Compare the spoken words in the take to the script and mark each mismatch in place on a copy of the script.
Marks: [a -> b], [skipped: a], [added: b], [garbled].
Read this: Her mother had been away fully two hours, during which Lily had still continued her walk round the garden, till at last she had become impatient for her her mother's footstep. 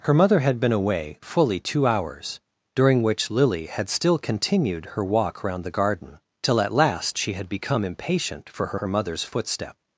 Her mother had been away fully two hours, during which Lily had still continued her walk round the garden, till at last she had become impatient for her her mother's footstep.